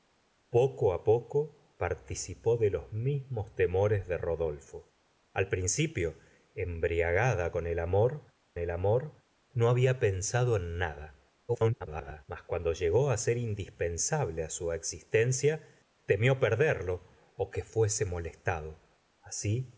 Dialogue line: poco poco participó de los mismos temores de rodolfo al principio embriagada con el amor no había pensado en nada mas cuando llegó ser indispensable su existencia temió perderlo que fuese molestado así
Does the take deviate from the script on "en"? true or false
false